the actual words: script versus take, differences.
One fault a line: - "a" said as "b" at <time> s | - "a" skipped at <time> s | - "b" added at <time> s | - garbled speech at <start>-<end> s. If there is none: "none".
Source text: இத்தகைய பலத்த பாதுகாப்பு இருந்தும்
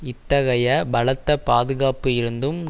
none